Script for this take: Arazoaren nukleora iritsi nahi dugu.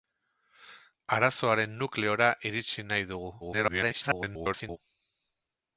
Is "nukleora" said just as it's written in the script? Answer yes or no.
yes